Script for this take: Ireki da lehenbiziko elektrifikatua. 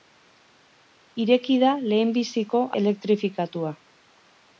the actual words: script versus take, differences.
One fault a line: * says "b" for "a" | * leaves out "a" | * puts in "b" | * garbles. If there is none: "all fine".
all fine